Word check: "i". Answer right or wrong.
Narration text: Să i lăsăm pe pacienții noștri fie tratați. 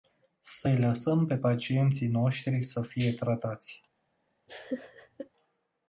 right